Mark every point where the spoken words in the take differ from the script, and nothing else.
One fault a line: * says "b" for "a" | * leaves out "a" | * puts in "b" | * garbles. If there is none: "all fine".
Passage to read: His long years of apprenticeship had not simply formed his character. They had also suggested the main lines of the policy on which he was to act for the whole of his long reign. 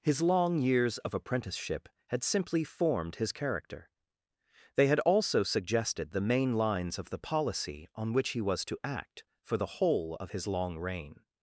* leaves out "not"